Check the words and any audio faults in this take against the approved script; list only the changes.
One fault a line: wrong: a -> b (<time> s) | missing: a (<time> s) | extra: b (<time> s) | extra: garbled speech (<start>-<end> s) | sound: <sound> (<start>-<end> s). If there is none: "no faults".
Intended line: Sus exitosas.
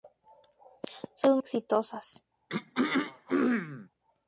sound: throat clearing (2.5-3.9 s)